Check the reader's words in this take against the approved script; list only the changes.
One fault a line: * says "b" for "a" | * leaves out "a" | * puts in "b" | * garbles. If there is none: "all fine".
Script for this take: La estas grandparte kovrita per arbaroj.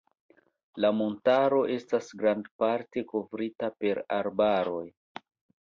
* puts in "montaro"